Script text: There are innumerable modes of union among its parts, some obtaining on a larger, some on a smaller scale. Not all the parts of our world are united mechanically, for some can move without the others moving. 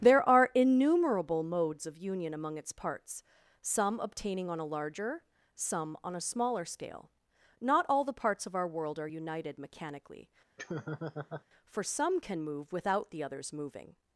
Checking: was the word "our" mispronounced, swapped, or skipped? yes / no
no